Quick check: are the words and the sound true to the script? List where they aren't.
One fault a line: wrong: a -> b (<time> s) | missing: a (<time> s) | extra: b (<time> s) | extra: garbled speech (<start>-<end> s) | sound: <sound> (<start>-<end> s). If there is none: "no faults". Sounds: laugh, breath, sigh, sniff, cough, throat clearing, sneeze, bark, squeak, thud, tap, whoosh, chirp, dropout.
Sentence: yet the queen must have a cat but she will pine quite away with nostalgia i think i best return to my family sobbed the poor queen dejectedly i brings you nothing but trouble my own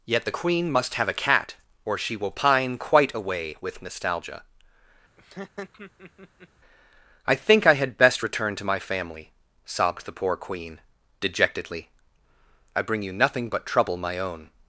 wrong: but -> or (1.9 s)
sound: laugh (5.2-6.5 s)
extra: had (7.7 s)
wrong: brings -> bring (12.8 s)